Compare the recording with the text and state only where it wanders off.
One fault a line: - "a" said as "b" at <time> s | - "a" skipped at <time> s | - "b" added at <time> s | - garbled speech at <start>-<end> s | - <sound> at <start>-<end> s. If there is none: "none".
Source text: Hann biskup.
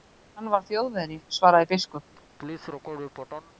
- "var Þjóðverji svaraði" added at 0.5 s
- laugh at 2.1-3.5 s